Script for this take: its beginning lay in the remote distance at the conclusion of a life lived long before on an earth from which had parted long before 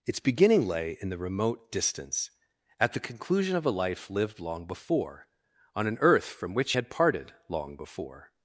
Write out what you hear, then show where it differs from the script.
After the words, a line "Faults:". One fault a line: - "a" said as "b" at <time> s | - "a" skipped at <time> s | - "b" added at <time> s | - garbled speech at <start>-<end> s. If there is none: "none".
its beginning lay in the remote distance at the conclusion of a life lived long before on an earth from which had parted long before
Faults:
none